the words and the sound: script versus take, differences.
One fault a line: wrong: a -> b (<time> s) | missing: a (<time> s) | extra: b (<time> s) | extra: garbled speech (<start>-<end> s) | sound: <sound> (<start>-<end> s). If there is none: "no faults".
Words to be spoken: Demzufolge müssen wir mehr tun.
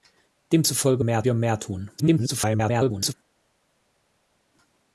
wrong: müssen -> mehr (1.0 s)
extra: garbled speech (2.0-3.1 s)